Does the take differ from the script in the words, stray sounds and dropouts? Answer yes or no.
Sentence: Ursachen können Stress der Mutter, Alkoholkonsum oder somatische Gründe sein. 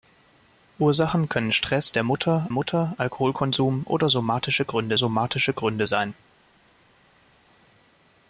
yes